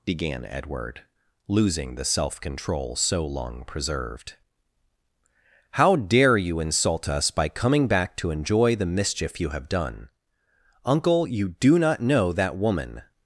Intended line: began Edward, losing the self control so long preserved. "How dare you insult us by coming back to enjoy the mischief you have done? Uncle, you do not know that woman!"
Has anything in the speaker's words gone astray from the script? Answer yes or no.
no